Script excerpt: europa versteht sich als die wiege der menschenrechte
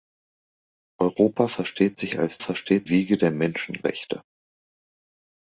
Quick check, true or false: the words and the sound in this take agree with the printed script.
false